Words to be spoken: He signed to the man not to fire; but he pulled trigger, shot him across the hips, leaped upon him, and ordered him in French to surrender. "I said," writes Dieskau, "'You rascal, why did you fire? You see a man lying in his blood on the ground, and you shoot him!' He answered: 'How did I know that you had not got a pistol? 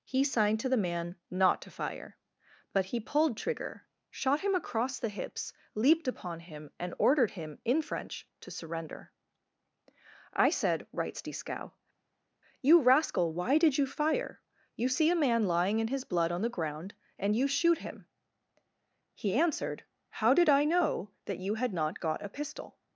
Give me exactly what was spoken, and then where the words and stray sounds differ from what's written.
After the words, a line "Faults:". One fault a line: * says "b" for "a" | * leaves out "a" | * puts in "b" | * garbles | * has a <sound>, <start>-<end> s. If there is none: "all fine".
He signed to the man not to fire; but he pulled trigger, shot him across the hips, leaped upon him, and ordered him in French to surrender. "I said," writes Dieskau, "'You rascal, why did you fire? You see a man lying in his blood on the ground, and you shoot him!' He answered: 'How did I know that you had not got a pistol?
Faults:
all fine